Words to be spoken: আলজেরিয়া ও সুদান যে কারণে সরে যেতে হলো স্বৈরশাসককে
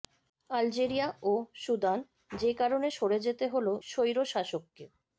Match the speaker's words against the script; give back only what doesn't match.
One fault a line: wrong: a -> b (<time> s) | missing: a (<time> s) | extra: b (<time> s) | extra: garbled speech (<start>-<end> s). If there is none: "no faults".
no faults